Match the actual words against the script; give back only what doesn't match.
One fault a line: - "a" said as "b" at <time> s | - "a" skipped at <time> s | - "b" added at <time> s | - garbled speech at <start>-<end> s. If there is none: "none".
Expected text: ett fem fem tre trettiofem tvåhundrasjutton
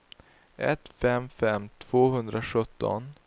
- "tre trettiofem" skipped at 1.7 s